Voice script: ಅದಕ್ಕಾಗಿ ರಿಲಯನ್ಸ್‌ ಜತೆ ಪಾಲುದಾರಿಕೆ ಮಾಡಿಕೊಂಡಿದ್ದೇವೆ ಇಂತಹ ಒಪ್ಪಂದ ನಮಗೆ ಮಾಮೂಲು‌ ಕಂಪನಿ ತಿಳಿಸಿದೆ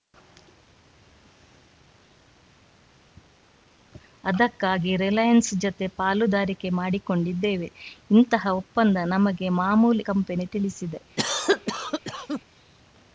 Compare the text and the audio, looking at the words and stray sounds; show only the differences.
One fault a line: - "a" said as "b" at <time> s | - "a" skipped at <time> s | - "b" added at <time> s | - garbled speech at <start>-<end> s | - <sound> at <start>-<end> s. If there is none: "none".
- cough at 11.2-12.4 s